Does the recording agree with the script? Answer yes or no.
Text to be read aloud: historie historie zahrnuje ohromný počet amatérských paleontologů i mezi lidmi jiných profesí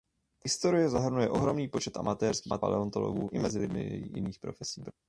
no